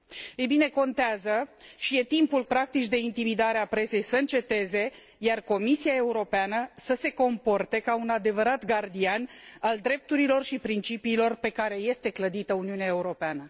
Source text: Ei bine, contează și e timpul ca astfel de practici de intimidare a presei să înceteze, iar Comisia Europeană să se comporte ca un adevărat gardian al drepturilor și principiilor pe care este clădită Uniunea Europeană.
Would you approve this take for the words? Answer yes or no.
no